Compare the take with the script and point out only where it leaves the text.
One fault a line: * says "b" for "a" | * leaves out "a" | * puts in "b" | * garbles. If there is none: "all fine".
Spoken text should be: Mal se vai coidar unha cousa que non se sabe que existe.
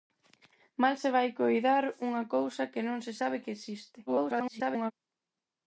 * garbles